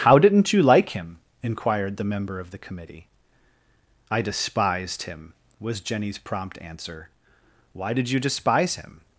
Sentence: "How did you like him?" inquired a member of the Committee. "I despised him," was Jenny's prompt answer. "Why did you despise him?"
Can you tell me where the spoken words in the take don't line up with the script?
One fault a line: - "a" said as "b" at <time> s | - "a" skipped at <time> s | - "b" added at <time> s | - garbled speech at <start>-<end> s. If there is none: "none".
- "did" said as "didn't" at 0.2 s
- "a" said as "the" at 2.0 s